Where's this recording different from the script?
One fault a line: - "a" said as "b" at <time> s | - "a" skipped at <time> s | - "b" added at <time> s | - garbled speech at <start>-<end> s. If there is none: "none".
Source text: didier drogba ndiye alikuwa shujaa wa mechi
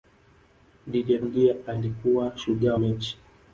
- "drogba" skipped at 1.2 s
- "wa" skipped at 2.7 s